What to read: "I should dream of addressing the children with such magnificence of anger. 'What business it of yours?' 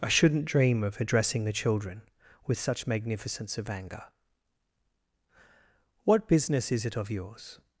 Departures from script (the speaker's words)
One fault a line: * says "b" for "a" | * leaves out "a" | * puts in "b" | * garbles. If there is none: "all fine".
* says "shouldn't" for "should"
* puts in "is"